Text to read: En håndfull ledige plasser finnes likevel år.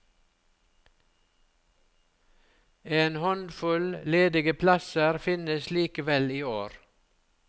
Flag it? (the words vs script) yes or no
yes